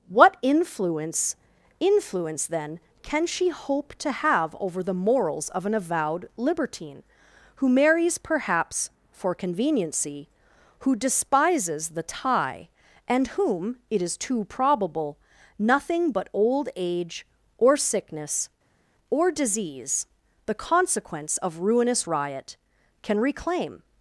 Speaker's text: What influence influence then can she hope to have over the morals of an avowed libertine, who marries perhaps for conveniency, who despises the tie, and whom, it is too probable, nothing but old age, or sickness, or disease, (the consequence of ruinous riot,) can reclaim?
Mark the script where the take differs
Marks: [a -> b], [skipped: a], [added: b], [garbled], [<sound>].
What influence influence then can she hope to have over the morals of an avowed libertine, who marries perhaps for conveniency, who despises the tie, and whom, it is too probable, nothing but old age, or sickness, or disease, (the consequence of ruinous riot,) can reclaim?